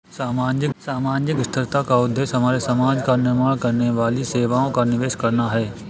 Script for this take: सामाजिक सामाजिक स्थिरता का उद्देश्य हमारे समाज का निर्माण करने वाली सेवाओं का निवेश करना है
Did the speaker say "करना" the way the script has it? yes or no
yes